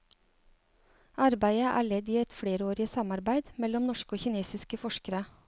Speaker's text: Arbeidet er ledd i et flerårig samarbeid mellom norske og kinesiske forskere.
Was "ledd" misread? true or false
false